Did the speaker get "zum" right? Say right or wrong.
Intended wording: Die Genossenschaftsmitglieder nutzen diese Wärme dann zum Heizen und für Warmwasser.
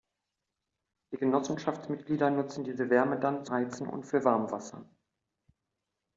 wrong